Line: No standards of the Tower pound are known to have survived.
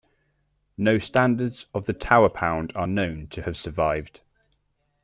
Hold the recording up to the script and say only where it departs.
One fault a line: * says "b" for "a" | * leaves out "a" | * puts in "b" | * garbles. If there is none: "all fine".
all fine